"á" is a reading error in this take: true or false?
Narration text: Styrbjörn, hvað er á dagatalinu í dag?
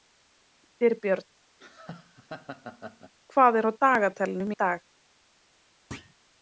false